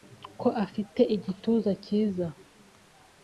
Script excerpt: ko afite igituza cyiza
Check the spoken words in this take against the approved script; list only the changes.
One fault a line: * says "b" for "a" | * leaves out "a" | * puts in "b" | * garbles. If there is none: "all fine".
all fine